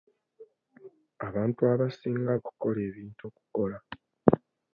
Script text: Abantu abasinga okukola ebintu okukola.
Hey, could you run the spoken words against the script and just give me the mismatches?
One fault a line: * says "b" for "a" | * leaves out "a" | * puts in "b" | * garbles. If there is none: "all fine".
all fine